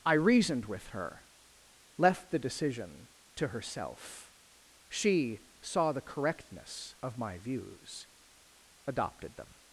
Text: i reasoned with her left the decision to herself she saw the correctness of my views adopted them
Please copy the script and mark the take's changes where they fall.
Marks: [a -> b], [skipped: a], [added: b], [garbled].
i reasoned with her left the decision to herself she saw the correctness of my views adopted them